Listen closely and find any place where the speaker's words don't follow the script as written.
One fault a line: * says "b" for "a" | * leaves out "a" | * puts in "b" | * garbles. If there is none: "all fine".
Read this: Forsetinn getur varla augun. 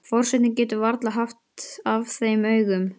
* puts in "haft af þeim"